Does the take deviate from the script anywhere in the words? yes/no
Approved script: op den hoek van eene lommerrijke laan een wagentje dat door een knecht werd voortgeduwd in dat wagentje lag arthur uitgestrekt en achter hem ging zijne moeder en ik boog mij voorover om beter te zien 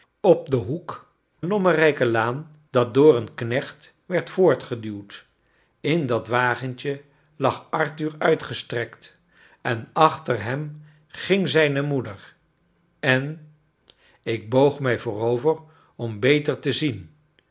yes